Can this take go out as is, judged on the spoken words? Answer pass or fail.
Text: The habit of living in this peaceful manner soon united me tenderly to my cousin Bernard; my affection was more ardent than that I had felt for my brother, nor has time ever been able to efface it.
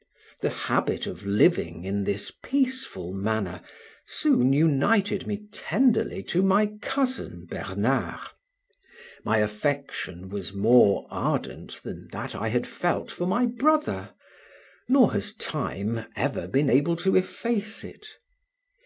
pass